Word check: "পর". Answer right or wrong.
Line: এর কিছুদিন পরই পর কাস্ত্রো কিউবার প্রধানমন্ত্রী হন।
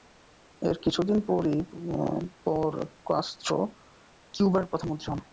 right